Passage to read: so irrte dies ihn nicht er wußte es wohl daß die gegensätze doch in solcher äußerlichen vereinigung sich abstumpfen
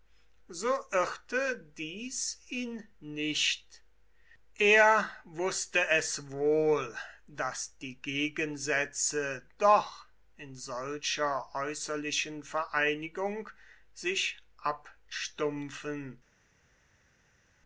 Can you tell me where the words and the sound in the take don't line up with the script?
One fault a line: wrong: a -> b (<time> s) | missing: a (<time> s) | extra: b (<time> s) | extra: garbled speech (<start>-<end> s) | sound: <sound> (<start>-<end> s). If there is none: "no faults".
no faults